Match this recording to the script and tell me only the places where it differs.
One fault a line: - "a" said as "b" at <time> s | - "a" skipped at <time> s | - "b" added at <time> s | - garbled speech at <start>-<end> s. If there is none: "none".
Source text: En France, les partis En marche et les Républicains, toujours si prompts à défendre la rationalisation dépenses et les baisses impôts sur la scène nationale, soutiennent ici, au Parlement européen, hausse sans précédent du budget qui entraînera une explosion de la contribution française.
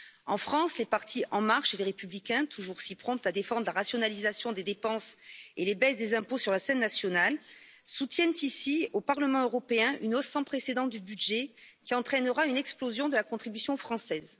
- "des" added at 4.5 s
- "des" added at 6.0 s
- "une" added at 10.0 s